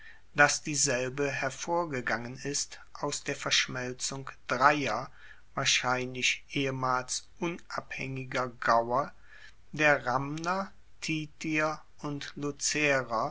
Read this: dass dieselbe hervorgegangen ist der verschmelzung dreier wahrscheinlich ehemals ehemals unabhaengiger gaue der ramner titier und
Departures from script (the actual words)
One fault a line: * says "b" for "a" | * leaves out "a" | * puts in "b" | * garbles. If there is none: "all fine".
* puts in "aus"
* leaves out "ehemals"